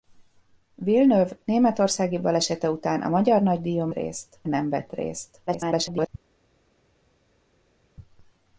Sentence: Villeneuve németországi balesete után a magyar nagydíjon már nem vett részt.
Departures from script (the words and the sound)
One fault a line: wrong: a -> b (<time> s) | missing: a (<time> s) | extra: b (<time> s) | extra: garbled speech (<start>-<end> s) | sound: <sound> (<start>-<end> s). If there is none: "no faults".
wrong: már -> részt (3.9 s)
extra: garbled speech (5.5-6.1 s)